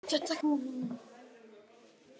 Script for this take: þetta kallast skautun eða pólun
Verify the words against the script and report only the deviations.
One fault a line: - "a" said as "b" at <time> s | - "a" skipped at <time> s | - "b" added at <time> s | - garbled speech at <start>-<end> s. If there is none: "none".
- "kallast skautun eða" skipped at 0.3 s